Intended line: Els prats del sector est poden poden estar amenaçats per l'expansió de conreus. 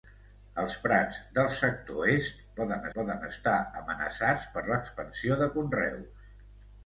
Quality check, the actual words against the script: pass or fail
pass